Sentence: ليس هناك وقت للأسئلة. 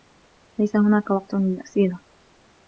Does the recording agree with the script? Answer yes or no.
yes